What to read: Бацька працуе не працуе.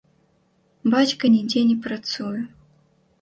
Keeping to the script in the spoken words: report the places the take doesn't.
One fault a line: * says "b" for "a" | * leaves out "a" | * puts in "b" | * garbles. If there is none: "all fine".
* says "нідзе" for "працуе"